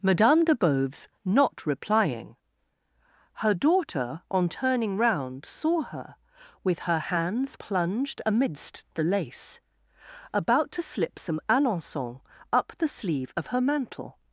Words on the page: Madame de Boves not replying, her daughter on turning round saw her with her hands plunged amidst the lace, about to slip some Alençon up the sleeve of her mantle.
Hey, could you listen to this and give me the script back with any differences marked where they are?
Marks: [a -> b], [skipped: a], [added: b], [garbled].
Madame de Boves not replying, her daughter on turning round saw her with her hands plunged amidst the lace, about to slip some Alençon up the sleeve of her mantle.